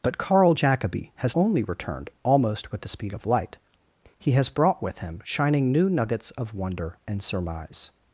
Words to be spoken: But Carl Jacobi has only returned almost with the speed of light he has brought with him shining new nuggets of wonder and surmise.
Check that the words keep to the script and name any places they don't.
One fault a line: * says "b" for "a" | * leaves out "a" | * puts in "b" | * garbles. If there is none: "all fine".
all fine